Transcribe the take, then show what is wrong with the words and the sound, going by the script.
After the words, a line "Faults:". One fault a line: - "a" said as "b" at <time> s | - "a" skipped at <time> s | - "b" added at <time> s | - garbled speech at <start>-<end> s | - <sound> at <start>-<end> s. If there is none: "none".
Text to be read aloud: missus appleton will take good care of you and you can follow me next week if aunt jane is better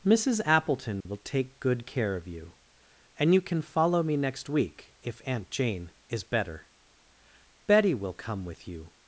missus appleton will take good care of you and you can follow me next week if aunt jane is better betty will come with you
Faults:
- dropout at 1.0-1.1 s
- "betty will come with you" added at 7.7 s